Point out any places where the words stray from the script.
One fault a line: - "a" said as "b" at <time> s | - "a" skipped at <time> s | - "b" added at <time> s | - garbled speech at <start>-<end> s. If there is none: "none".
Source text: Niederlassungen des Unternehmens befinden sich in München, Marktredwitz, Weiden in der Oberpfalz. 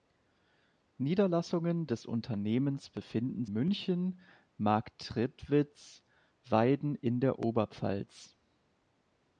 - "sich in" skipped at 3.5 s